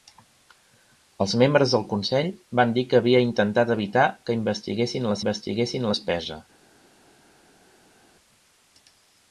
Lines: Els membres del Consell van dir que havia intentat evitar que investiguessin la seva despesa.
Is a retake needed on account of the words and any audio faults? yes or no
yes